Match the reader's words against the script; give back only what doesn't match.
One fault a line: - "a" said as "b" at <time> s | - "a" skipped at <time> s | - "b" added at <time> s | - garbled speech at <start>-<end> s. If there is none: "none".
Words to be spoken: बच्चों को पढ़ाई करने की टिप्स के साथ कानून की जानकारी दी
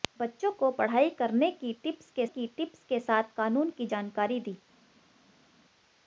- "की टिप्स के" added at 2.3 s